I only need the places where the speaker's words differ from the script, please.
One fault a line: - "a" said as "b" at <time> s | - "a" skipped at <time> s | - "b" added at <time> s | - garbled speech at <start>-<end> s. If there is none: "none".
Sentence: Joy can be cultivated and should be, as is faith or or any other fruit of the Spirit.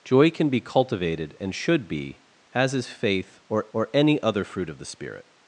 none